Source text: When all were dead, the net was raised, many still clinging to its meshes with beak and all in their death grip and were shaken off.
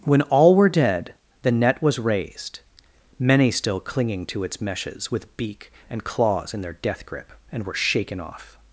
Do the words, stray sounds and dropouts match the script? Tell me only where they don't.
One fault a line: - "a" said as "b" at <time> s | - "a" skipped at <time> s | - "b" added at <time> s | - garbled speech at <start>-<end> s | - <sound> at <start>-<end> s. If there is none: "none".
- "all" said as "claws" at 6.0 s